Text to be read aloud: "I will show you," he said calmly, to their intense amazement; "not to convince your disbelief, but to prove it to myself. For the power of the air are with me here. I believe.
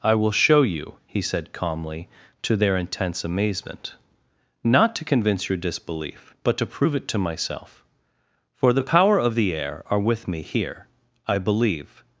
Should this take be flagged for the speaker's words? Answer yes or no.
no